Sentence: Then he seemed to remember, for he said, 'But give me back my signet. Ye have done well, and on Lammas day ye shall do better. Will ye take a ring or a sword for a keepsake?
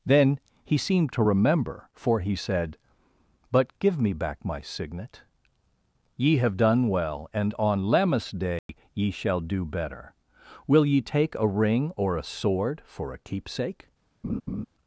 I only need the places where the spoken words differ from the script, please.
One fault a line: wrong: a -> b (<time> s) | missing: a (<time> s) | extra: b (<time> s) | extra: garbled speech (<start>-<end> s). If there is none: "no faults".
no faults